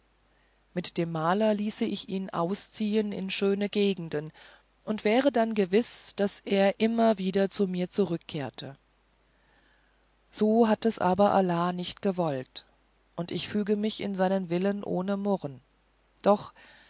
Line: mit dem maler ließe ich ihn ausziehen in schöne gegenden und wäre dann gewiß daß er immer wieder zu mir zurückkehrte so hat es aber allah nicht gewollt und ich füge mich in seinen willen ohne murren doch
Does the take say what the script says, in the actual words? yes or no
yes